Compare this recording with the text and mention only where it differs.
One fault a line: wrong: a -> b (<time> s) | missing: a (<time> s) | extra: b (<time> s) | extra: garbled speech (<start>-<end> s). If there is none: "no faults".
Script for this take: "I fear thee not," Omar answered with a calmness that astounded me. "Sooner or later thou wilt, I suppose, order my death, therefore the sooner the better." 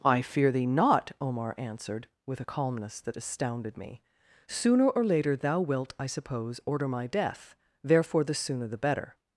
no faults